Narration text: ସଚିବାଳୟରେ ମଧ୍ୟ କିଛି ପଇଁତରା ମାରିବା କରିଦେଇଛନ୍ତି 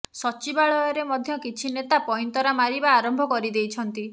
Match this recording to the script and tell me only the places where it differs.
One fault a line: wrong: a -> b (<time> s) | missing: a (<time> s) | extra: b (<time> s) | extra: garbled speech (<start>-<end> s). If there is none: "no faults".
extra: ନେତା (1.8 s)
extra: ଆରମ୍ଭ (3.0 s)